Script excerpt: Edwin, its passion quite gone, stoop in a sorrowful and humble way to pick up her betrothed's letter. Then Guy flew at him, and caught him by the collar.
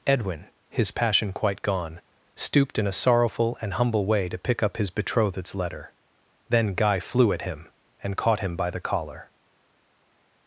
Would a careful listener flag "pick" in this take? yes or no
no